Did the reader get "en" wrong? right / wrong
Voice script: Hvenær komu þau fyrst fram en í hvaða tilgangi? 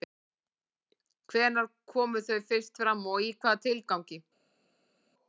wrong